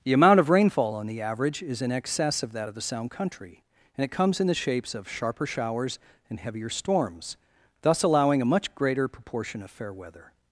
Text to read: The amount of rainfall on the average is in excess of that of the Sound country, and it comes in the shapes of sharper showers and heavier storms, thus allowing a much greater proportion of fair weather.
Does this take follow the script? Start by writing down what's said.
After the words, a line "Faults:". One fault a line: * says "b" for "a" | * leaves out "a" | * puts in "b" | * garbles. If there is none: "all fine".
The amount of rainfall on the average is in excess of that of the Sound country, and it comes in the shapes of sharper showers and heavier storms, thus allowing a much greater proportion of fair weather.
Faults:
all fine